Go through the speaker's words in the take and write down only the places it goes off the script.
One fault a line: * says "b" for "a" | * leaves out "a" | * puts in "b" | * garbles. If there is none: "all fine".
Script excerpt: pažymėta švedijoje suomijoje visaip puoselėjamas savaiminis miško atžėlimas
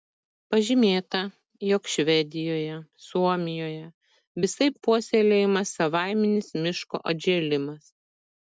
* puts in "jog"